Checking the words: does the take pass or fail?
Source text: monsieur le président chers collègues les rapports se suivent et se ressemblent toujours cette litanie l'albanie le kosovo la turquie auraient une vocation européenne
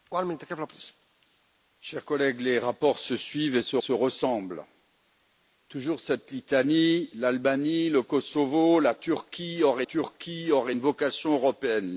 fail